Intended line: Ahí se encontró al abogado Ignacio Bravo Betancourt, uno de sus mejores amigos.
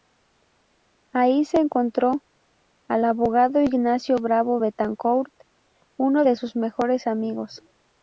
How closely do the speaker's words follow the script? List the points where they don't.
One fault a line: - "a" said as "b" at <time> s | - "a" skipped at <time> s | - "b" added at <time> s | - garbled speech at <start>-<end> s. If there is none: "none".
none